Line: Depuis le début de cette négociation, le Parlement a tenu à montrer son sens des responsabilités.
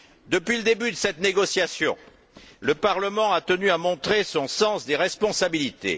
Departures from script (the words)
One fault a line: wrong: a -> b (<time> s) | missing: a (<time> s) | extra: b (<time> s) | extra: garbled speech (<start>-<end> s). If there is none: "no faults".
no faults